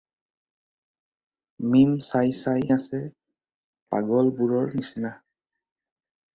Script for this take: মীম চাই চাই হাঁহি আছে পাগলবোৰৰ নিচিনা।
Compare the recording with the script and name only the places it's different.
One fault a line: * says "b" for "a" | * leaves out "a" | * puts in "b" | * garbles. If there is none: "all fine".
* leaves out "হাঁহি"